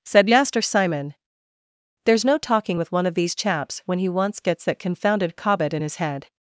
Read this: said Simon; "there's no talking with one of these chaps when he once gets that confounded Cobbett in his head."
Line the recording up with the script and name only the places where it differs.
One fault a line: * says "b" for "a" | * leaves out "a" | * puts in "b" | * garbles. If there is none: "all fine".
* puts in "Master"